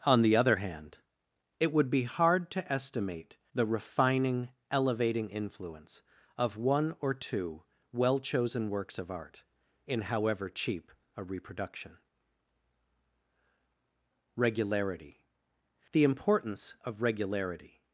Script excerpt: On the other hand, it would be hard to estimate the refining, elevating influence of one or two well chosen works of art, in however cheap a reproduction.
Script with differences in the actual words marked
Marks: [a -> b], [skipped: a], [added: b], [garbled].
On the other hand, it would be hard to estimate the refining, elevating influence of one or two well chosen works of art, in however cheap a reproduction. [added: Regularity The importance of Regularity]